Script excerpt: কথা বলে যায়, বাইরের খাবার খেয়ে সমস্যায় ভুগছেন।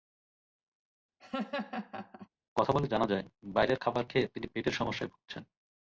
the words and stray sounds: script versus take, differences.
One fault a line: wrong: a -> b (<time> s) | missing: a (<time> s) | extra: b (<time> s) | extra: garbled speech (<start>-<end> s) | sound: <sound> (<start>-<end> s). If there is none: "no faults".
sound: laugh (1.2-2.3 s)
extra: জানা (2.9 s)
extra: তিনি পেটের (4.3 s)